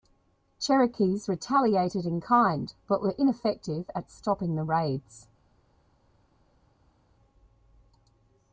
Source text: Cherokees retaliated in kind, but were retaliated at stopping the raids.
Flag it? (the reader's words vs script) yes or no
yes